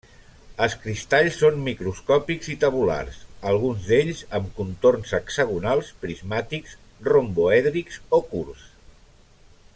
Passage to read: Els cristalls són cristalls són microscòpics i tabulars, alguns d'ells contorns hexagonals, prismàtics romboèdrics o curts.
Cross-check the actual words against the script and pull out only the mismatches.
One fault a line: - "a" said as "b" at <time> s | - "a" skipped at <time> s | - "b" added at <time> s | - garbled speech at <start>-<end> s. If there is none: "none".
- "cristalls són" skipped at 1.6 s
- "amb" added at 4.4 s